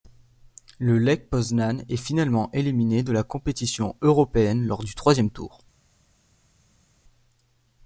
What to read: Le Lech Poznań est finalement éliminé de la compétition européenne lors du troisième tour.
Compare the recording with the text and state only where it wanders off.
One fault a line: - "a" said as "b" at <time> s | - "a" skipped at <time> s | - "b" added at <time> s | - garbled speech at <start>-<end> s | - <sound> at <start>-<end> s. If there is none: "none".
none